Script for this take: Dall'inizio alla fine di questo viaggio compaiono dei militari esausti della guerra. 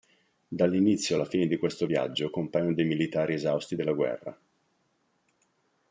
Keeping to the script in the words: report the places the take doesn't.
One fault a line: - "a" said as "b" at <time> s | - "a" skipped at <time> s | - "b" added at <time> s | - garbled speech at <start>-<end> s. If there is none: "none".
none